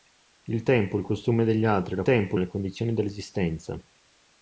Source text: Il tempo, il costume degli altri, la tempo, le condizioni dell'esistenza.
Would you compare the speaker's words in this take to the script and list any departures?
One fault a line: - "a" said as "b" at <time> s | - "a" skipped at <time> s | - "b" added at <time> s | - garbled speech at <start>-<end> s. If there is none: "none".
none